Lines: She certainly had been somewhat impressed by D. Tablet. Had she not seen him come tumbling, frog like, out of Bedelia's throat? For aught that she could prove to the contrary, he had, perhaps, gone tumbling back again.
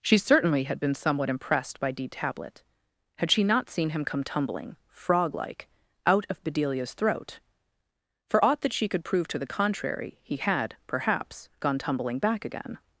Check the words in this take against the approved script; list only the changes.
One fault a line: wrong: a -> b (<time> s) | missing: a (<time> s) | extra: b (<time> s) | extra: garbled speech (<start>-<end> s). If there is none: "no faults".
no faults